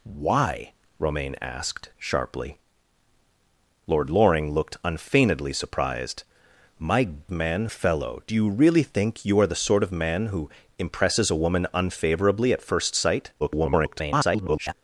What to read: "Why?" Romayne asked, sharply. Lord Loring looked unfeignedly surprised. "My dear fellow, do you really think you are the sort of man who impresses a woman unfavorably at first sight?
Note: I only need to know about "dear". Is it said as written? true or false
false